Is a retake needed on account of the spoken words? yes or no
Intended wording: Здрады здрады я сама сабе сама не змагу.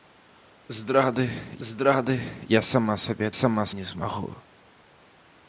no